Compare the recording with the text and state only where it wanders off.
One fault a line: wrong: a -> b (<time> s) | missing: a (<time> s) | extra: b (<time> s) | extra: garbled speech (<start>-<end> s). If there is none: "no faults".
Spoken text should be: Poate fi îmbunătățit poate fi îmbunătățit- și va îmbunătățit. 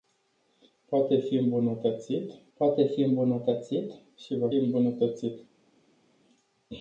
no faults